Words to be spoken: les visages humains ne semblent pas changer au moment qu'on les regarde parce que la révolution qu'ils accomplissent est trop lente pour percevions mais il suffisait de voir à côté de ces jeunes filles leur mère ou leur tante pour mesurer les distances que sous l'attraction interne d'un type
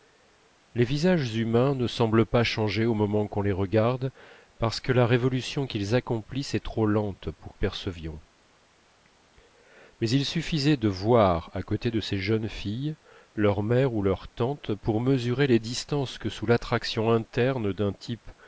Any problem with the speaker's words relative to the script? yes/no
no